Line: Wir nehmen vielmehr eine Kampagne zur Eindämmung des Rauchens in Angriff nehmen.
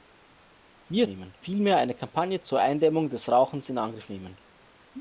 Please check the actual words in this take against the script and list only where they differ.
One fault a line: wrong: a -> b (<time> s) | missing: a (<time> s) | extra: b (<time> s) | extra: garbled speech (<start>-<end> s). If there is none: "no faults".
no faults